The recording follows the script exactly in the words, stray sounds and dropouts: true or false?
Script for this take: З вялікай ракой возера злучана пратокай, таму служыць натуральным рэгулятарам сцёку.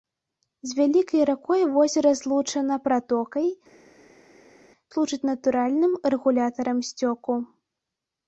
false